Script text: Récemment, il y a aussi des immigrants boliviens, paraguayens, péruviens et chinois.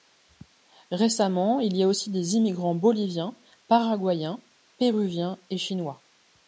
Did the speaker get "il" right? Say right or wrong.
right